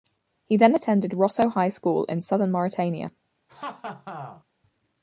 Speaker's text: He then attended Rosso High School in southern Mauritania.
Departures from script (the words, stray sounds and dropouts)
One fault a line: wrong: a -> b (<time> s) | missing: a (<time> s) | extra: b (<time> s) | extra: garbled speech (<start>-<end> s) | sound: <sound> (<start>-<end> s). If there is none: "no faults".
sound: laugh (3.5-4.4 s)